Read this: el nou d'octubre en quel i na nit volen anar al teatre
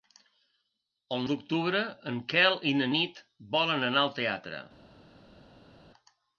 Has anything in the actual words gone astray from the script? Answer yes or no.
yes